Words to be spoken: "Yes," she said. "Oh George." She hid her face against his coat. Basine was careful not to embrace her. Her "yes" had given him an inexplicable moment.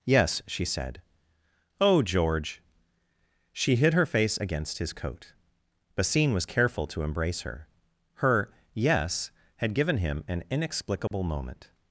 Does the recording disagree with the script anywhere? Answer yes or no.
yes